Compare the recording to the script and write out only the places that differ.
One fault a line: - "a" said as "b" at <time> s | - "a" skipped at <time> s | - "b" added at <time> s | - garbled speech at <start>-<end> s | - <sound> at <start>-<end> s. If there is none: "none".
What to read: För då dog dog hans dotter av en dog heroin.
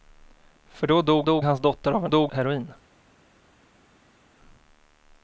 none